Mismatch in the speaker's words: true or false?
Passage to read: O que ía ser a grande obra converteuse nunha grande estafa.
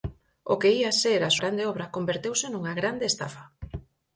false